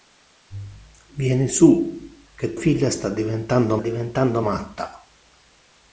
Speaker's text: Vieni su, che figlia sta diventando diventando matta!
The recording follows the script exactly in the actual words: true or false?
true